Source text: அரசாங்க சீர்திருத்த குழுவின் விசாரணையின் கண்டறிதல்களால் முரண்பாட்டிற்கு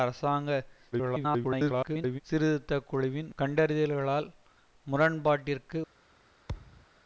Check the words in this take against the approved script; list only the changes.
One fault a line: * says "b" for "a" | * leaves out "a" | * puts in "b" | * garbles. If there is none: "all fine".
* garbles
* leaves out "விசாரணையின்"